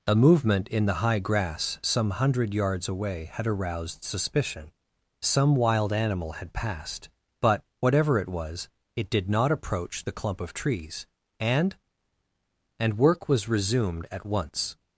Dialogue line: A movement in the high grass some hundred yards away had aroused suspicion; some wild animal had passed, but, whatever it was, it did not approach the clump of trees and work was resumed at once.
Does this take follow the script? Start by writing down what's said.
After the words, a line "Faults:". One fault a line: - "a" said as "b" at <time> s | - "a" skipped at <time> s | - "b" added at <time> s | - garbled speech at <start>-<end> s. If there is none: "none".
A movement in the high grass some hundred yards away had aroused suspicion; some wild animal had passed, but, whatever it was, it did not approach the clump of trees and and work was resumed at once.
Faults:
- "and" added at 12.8 s